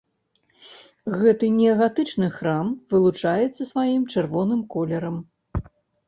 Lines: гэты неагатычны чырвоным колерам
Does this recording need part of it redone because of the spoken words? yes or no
yes